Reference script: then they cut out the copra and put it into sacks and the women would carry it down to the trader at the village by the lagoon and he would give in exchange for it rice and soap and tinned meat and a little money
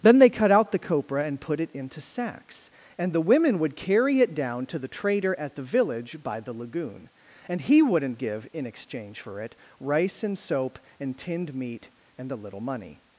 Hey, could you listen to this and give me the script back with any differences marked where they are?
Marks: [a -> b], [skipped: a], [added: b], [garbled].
then they cut out the copra and put it into sacks and the women would carry it down to the trader at the village by the lagoon and he [would -> wouldn't] give in exchange for it rice and soap and tinned meat and a little money